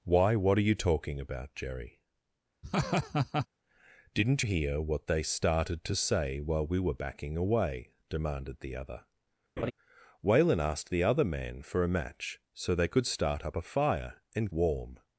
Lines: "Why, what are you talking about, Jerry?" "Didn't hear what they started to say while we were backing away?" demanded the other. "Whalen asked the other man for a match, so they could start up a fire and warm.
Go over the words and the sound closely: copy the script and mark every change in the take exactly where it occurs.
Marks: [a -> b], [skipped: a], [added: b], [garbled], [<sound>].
"Why, what are you talking about, Jerry?" [laugh] "Didn't hear what they started to say while we were backing away?" demanded the other. [laugh] "Whalen asked the other man for a match, so they could start up a fire and warm.